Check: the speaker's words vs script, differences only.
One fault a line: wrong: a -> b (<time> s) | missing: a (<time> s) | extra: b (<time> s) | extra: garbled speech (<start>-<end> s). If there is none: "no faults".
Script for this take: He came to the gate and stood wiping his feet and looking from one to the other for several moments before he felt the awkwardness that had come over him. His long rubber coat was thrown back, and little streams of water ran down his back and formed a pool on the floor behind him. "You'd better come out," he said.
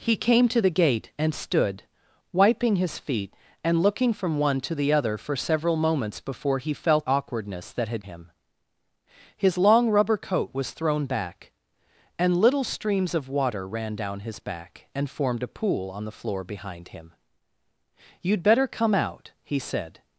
missing: the (7.1 s)
missing: come over (8.0 s)